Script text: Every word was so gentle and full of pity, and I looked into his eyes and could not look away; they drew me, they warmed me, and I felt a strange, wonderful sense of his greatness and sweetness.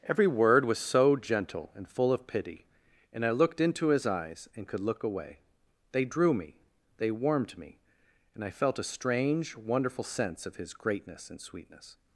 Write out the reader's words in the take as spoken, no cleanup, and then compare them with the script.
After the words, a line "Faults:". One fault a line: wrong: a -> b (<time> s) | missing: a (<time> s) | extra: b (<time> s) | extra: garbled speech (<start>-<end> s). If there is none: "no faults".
Every word was so gentle and full of pity, and I looked into his eyes and could look away; they drew me, they warmed me, and I felt a strange, wonderful sense of his greatness and sweetness.
Faults:
missing: not (4.8 s)